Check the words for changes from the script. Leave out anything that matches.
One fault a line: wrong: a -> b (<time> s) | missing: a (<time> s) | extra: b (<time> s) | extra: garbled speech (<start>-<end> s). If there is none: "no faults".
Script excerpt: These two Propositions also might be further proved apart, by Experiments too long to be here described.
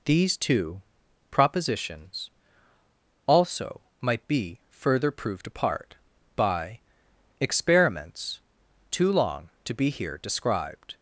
no faults